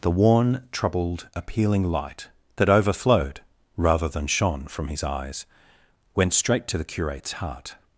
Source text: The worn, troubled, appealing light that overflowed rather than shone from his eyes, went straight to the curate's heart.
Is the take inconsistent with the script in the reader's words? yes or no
no